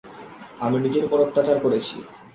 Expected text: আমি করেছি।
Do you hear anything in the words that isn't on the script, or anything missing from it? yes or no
yes